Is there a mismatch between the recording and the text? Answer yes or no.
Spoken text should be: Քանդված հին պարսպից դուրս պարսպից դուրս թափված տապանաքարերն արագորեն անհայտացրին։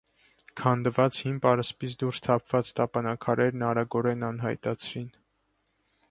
yes